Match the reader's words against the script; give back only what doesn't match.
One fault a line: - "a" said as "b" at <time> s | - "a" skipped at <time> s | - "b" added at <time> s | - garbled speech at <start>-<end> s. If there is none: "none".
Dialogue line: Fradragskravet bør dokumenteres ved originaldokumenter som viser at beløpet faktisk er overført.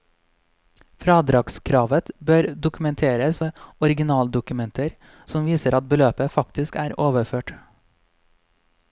none